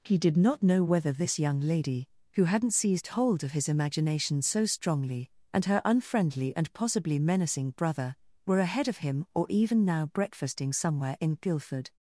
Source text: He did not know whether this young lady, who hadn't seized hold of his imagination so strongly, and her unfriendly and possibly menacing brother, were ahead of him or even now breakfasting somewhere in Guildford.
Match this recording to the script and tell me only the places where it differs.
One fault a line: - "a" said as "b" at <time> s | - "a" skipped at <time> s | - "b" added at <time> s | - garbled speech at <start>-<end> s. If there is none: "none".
none